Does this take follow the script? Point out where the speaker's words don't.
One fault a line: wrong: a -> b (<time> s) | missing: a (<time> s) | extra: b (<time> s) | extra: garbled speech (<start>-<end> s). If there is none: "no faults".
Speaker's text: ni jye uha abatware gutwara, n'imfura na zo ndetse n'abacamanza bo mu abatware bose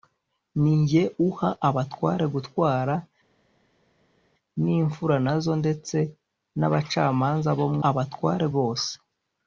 no faults